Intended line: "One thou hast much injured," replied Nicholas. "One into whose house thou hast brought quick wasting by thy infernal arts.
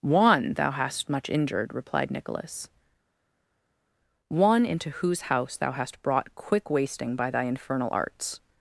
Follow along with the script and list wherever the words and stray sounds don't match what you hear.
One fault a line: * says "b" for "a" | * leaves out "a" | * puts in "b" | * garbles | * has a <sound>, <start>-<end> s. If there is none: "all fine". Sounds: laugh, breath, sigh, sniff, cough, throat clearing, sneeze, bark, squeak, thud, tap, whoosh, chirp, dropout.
all fine